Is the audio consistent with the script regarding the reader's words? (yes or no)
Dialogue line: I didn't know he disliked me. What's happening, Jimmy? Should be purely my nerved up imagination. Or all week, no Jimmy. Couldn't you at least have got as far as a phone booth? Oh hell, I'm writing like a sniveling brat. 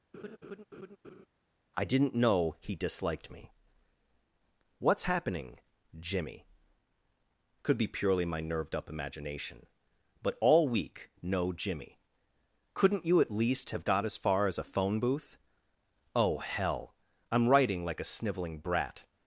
no